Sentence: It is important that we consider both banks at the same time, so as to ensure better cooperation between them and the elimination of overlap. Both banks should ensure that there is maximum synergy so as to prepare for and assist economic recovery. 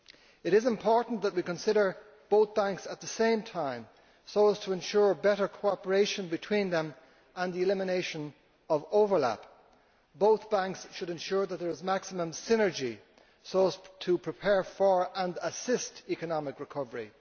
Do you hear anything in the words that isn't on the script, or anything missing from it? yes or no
no